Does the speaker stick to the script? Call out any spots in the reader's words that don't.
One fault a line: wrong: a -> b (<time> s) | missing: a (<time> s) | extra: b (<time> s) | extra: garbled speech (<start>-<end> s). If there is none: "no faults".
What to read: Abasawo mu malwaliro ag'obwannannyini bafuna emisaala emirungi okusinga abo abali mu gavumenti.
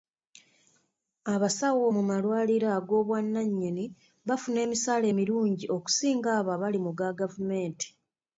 extra: ga (7.0 s)